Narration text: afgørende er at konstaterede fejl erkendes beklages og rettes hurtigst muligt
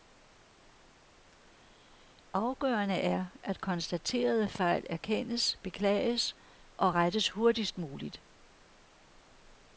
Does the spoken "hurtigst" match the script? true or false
true